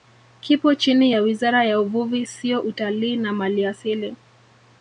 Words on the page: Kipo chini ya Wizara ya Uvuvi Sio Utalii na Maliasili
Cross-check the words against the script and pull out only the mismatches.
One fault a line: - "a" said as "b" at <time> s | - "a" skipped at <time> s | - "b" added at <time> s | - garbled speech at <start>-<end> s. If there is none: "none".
none